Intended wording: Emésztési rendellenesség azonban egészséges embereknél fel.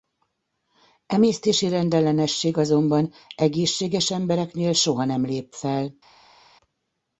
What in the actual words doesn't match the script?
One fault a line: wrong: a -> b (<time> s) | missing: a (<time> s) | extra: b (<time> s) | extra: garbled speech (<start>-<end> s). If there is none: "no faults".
extra: soha nem lép (4.7 s)